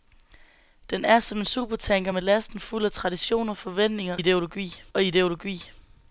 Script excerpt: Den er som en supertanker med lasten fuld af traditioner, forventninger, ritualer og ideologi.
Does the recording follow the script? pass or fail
fail